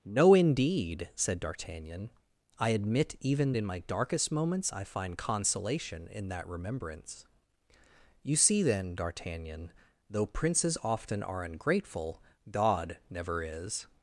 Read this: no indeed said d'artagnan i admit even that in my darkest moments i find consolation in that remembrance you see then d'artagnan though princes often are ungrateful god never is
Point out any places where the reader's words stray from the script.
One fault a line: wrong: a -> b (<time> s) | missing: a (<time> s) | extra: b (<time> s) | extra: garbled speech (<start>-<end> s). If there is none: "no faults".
missing: that (3.5 s)